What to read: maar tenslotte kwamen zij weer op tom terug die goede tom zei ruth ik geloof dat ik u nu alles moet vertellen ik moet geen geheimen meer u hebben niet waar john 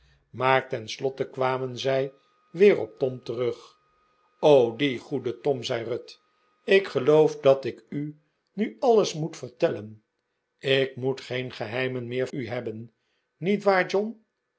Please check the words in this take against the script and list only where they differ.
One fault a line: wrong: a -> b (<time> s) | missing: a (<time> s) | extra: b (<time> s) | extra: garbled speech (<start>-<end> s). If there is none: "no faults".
no faults